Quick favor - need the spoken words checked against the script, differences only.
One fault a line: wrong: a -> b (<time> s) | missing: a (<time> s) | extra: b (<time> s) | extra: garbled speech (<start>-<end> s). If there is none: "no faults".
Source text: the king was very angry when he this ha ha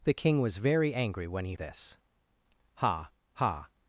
no faults